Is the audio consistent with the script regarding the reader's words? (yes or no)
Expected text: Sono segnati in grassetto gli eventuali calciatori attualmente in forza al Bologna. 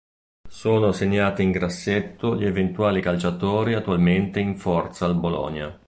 yes